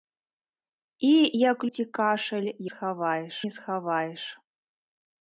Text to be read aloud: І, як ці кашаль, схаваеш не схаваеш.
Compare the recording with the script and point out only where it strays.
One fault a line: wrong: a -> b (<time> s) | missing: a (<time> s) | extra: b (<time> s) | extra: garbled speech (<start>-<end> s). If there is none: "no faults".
no faults